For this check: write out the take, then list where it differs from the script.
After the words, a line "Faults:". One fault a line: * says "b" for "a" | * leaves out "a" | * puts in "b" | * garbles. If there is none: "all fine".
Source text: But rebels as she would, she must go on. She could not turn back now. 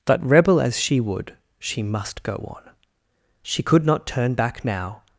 But rebel as she would, she must go on. She could not turn back now.
Faults:
* says "rebel" for "rebels"